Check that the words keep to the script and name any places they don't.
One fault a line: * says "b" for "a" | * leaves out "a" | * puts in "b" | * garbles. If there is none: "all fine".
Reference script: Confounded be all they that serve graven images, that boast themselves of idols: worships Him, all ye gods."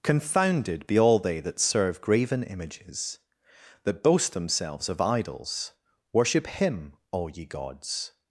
* says "worship" for "worships"